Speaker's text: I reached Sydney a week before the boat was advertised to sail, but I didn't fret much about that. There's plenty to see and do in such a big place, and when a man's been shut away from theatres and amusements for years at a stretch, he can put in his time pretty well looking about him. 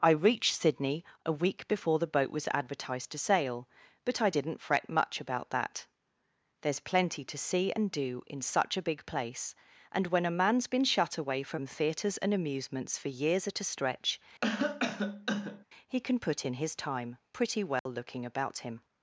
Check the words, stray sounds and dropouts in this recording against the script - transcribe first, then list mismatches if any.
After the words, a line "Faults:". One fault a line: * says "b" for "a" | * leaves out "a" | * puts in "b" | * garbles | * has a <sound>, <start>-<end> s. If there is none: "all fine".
I reached Sydney a week before the boat was advertised to sail, but I didn't fret much about that. There's plenty to see and do in such a big place, and when a man's been shut away from theatres and amusements for years at a stretch, he can put in his time pretty well looking about him.
Faults:
* has a cough, 14.4-15.7 s
* has a dropout, 17.8-17.9 s